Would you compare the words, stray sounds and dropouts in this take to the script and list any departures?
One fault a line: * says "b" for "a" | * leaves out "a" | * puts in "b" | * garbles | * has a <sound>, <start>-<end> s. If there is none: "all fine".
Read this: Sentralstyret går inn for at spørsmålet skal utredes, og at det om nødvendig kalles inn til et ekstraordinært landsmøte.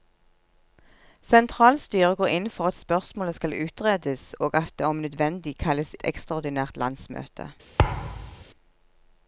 * leaves out "inn til"
* has a thud, 7.8-8.4 s